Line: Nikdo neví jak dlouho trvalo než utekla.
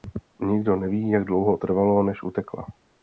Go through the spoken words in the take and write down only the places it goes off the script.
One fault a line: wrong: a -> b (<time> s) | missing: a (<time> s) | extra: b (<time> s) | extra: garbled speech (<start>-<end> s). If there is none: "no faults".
no faults